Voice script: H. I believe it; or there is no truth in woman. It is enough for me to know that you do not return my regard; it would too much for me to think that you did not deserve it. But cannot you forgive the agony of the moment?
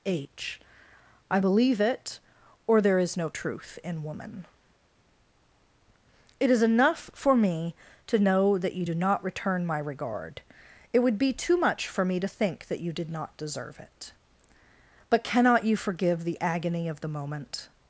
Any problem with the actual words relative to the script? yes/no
yes